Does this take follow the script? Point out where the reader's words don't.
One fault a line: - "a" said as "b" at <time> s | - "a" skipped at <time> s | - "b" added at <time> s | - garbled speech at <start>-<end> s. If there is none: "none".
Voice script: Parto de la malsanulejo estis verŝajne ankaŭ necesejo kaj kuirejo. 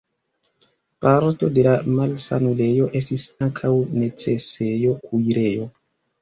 - "verŝajne" skipped at 3.2 s
- "kaj" skipped at 4.9 s